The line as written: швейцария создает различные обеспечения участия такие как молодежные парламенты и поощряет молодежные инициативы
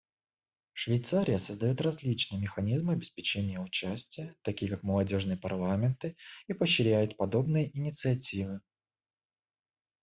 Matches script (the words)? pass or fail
fail